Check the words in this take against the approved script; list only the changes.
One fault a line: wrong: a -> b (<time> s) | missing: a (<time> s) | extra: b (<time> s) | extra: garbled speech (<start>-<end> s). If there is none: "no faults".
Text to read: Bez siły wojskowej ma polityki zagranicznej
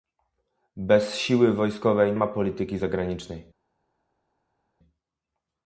no faults